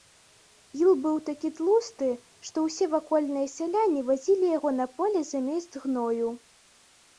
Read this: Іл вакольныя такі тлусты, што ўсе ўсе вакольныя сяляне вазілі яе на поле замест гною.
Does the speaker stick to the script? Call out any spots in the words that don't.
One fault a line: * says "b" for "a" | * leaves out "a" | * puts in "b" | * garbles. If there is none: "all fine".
* says "быў" for "вакольныя"
* leaves out "ўсе"
* says "яго" for "яе"